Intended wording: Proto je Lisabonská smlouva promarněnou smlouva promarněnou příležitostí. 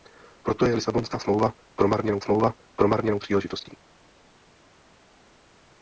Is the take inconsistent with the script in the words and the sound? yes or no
no